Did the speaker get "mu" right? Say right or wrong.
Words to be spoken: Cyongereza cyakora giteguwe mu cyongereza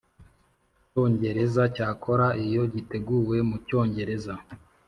right